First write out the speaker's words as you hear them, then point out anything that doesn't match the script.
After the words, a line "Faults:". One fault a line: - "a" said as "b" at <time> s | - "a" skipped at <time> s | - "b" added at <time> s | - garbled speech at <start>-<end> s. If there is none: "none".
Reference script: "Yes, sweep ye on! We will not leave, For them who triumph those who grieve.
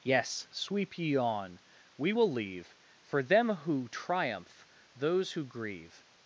"Yes, sweep ye on! We will leave, For them who triumph those who grieve.
Faults:
- "not" skipped at 2.3 s